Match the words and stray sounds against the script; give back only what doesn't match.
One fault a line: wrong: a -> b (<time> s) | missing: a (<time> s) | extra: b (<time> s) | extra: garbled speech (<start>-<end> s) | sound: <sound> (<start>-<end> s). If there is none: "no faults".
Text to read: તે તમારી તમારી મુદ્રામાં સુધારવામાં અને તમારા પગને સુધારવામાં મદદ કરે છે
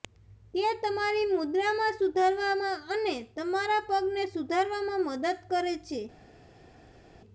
missing: તમારી (1.3 s)